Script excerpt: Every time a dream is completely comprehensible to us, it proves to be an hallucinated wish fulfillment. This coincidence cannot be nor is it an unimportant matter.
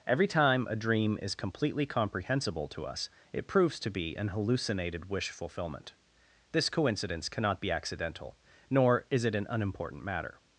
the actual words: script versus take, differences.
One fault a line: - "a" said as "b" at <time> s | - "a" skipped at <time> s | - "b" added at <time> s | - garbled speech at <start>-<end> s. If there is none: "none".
- "accidental" added at 7.7 s